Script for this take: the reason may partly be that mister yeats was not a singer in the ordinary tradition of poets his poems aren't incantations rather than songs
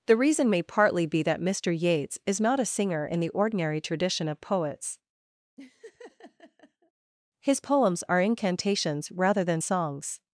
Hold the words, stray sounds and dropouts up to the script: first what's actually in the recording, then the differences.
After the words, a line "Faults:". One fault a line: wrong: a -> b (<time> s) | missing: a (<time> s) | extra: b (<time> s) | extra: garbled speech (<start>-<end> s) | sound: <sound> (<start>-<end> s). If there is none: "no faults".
the reason may partly be that mister yeats is not a singer in the ordinary tradition of poets his poems are incantations rather than songs
Faults:
wrong: was -> is (2.2 s)
sound: laugh (5.6-6.9 s)
wrong: aren't -> are (8.1 s)